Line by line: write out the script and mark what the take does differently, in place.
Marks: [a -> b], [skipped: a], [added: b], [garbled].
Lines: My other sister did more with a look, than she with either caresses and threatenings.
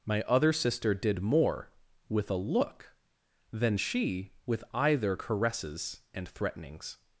My other sister did more with a look, than she with either caresses and threatenings.